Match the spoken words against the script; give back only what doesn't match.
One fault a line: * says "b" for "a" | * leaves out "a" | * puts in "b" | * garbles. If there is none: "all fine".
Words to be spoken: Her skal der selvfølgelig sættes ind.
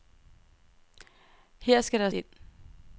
* leaves out "selvfølgelig sættes"